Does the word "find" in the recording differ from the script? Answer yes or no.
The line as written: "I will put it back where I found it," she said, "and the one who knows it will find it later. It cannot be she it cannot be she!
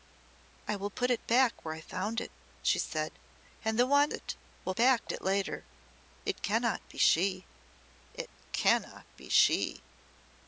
yes